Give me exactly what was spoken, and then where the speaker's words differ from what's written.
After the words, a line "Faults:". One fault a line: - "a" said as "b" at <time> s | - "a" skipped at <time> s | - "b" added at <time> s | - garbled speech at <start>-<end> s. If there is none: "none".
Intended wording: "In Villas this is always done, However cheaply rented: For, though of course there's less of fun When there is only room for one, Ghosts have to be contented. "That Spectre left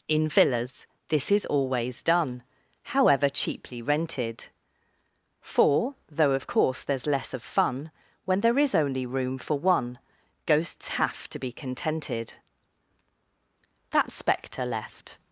"In Villas this is always done, However cheaply rented: For, though of course there's less of fun When there is only room for one, Ghosts have to be contented. "That Spectre left
Faults:
none